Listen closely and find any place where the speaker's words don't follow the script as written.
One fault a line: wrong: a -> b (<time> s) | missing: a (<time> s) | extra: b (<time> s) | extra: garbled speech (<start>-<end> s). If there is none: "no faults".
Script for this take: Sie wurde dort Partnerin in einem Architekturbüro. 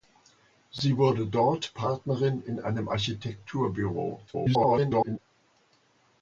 extra: garbled speech (4.3-5.2 s)